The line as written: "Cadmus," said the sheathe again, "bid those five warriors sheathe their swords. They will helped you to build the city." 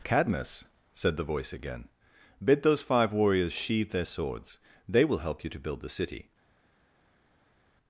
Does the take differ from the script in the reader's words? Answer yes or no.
yes